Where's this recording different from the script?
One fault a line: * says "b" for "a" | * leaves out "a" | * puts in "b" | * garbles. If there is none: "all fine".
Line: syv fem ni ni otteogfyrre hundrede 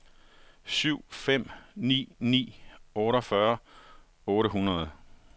* puts in "otte"